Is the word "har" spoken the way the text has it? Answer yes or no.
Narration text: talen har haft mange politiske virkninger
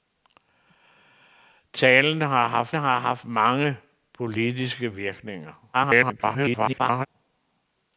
yes